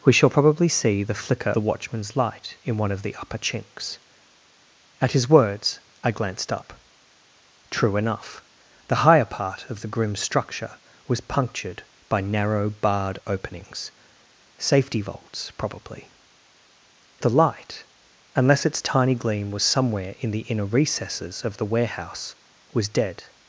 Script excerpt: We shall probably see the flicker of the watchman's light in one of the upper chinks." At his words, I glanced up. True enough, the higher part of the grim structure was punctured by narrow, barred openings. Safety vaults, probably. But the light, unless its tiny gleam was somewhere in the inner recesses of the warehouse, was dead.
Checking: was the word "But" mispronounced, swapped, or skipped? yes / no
yes